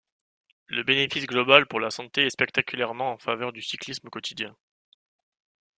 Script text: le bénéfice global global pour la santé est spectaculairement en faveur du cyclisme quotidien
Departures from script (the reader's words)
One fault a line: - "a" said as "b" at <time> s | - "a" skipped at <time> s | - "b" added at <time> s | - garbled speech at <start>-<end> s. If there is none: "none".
- "global" skipped at 1.7 s